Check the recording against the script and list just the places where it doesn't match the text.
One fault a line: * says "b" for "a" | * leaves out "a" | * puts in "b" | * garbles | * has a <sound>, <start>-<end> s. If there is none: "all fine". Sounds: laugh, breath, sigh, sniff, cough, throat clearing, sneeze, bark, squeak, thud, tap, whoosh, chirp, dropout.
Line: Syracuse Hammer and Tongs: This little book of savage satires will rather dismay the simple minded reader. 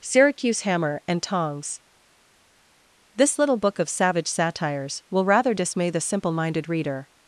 all fine